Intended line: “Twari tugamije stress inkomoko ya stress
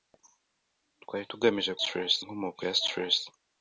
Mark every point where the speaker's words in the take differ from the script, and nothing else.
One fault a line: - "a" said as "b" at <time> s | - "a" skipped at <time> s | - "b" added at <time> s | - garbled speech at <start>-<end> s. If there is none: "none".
none